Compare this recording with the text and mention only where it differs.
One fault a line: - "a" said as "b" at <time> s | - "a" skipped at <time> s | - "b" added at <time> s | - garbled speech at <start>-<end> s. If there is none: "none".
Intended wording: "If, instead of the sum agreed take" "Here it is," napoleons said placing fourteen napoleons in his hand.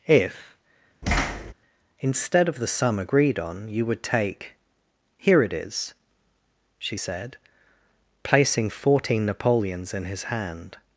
- "on you would" added at 3.4 s
- "napoleons" said as "she" at 6.8 s